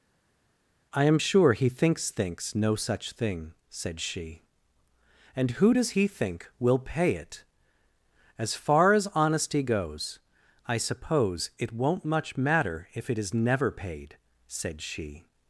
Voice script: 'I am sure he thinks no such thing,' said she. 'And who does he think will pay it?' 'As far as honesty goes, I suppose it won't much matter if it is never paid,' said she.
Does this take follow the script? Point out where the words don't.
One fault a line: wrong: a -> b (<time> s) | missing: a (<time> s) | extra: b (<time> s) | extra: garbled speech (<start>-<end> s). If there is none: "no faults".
extra: thinks (2.1 s)